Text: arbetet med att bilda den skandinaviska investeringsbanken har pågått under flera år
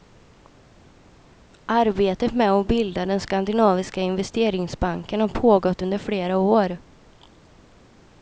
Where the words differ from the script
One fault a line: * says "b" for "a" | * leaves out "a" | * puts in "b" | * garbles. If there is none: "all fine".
all fine